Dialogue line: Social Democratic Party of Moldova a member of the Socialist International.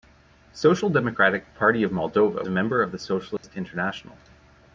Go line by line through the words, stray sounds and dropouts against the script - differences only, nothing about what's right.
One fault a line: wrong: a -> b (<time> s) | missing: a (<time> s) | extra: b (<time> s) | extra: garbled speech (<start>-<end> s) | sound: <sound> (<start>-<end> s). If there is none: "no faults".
sound: dropout (3.4-3.4 s)